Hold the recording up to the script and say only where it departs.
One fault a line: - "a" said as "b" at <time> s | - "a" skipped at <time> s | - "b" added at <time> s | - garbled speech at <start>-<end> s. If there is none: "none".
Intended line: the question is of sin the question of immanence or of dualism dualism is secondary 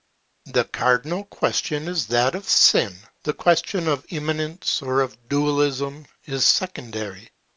- "cardinal" added at 0.6 s
- "that" added at 2.1 s
- "dualism" skipped at 6.1 s